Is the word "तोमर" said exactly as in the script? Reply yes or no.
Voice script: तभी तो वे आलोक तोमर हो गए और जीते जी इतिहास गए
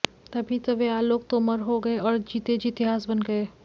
yes